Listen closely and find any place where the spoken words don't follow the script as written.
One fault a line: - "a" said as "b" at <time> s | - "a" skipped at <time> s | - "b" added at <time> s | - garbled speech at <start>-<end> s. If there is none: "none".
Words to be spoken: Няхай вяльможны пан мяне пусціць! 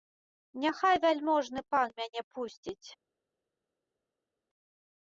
none